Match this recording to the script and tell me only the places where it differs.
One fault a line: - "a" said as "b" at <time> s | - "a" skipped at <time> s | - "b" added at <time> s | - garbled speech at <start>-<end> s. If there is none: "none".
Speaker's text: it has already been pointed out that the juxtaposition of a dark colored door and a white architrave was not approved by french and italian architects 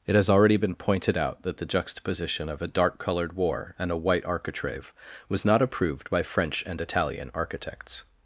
- "door" said as "war" at 3.3 s